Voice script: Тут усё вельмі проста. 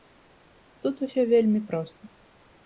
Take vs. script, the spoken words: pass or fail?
pass